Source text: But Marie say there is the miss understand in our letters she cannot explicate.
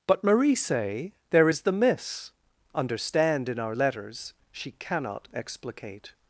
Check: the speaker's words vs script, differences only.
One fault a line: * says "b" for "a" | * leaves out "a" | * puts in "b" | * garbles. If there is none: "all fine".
all fine